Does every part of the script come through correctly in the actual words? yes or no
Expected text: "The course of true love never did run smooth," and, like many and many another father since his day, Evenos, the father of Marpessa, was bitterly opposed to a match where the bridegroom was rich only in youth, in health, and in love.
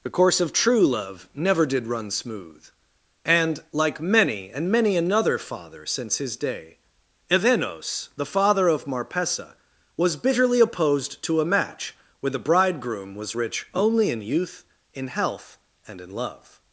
yes